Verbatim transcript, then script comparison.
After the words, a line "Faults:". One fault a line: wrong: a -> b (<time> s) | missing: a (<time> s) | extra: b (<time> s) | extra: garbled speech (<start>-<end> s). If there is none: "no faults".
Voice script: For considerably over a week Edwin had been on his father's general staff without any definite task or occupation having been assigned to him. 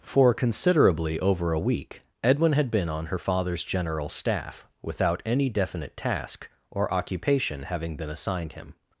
For considerably over a week Edwin had been on her father's general staff without any definite task or occupation having been assigned him.
Faults:
wrong: his -> her (3.1 s)
missing: to (8.5 s)